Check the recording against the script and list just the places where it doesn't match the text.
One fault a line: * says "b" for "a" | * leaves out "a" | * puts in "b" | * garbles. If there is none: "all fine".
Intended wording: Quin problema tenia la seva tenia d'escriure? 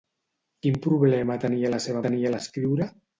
all fine